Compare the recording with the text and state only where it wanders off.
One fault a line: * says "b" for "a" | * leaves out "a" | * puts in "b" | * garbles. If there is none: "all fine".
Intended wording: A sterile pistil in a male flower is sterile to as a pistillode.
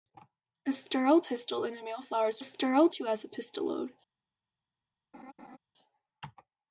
all fine